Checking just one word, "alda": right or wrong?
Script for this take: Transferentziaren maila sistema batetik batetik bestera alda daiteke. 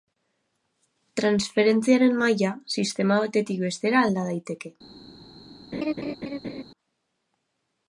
right